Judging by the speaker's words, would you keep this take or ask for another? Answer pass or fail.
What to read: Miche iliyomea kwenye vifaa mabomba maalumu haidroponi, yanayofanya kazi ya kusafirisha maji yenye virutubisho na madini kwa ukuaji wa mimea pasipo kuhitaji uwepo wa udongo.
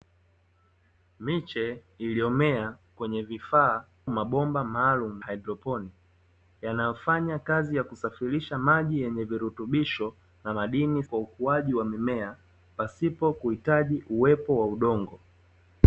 pass